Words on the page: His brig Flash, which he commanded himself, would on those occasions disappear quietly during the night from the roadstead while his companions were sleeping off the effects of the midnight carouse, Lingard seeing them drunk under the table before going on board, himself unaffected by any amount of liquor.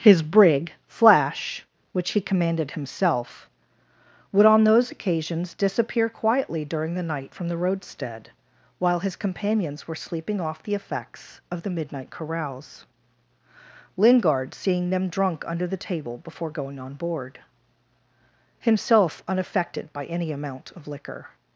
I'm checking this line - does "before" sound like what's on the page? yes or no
yes